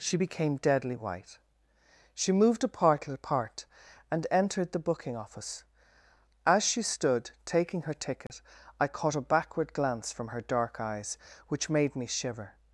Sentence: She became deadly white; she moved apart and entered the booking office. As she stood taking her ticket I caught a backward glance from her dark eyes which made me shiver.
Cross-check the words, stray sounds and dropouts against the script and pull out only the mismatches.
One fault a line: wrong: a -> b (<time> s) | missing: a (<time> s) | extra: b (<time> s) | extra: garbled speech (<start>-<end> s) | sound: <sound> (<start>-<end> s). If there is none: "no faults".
extra: apart (3.1 s)
sound: dropout (8.3-8.3 s)